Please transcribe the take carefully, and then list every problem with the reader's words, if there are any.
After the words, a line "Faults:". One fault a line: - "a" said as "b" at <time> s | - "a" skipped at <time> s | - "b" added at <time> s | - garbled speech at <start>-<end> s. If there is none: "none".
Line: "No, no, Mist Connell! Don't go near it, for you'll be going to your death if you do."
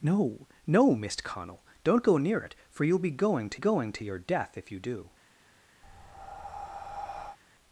"No, no, Mist Connell! Don't go near it, for you'll be going to going to your death if you do."
Faults:
- "going to" added at 3.5 s